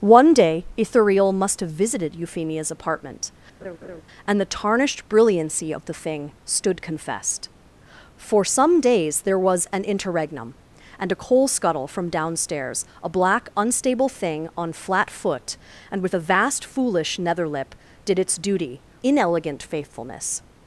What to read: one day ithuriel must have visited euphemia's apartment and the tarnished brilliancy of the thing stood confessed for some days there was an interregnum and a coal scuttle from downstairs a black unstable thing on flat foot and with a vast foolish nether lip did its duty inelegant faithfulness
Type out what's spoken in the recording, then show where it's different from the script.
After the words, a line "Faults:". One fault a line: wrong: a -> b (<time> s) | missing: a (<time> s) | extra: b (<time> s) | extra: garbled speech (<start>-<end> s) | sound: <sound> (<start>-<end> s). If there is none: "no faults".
one day ithuriel must have visited euphemia's apartment and the tarnished brilliancy of the thing stood confessed for some days there was an interregnum and a coal scuttle from downstairs a black unstable thing on flat foot and with a vast foolish nether lip did its duty inelegant faithfulness
Faults:
sound: laugh (3.6-4.0 s)